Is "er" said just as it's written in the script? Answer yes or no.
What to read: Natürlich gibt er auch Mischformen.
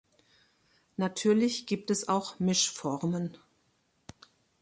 no